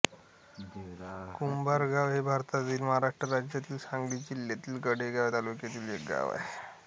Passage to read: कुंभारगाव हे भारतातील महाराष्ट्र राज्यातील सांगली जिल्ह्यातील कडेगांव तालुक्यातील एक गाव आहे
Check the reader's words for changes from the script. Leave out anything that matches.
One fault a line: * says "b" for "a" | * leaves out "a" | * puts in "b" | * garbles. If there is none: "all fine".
all fine